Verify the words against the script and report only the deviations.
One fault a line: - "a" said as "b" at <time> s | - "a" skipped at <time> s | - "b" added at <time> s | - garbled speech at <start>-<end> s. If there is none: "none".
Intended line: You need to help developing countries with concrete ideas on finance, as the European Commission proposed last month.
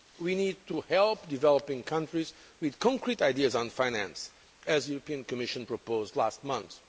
- "You" said as "We" at 0.2 s